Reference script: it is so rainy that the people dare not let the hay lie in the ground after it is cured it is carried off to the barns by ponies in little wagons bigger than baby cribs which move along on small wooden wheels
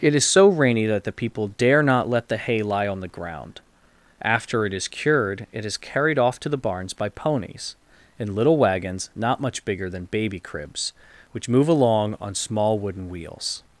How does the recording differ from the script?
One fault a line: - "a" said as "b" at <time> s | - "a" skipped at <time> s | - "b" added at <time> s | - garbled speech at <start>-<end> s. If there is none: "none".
- "in" said as "on" at 2.9 s
- "not much" added at 9.2 s